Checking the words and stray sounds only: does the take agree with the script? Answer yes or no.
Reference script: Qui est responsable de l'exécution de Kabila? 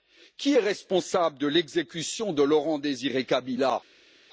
no